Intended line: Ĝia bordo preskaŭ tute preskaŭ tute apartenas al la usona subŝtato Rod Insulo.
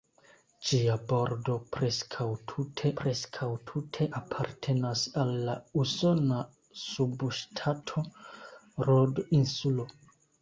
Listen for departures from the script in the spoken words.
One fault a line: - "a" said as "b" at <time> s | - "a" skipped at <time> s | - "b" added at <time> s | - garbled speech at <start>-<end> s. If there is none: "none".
none